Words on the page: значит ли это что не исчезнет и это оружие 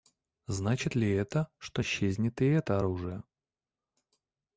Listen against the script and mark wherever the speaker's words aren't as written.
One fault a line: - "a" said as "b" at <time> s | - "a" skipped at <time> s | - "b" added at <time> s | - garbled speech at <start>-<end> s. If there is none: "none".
- "не" skipped at 1.8 s